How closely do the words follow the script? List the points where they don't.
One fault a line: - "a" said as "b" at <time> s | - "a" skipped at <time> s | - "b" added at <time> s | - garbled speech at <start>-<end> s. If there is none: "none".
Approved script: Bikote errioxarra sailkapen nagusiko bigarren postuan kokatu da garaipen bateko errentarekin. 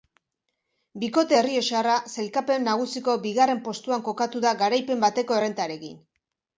none